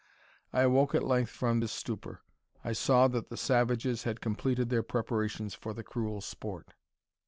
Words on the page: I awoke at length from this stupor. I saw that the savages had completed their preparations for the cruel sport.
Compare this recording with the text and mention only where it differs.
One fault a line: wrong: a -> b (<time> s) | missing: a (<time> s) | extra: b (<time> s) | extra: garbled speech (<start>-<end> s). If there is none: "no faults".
no faults